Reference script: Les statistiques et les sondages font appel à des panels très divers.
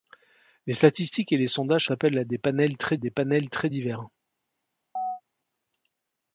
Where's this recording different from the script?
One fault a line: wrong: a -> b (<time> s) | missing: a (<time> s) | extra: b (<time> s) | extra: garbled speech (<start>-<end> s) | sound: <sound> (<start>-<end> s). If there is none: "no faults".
missing: font (1.9 s)
extra: des panels très (3.0 s)
sound: chirp (5.0-5.2 s)